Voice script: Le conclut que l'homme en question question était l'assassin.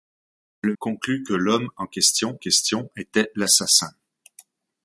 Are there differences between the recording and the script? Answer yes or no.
no